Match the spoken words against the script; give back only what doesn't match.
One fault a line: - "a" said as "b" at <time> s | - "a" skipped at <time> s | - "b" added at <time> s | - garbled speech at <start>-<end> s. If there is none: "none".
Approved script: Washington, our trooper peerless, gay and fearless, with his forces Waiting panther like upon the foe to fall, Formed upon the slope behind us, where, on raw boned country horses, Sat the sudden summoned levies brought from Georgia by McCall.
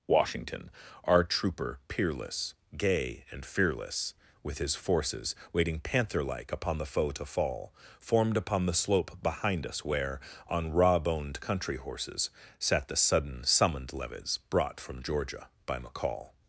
none